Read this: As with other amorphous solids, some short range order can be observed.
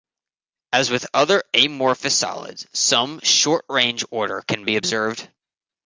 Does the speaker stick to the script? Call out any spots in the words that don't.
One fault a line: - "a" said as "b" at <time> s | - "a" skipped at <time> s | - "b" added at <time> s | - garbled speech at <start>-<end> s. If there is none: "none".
none